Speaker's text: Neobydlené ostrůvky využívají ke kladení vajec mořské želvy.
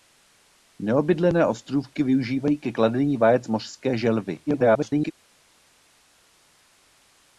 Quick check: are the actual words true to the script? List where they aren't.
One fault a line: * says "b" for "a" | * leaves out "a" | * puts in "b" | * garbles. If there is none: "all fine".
* garbles